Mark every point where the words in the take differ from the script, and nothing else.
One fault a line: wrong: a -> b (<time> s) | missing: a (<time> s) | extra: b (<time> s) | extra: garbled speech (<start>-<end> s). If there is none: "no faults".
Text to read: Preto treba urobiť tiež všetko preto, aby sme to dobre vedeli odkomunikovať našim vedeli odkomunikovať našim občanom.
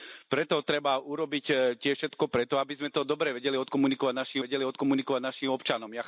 no faults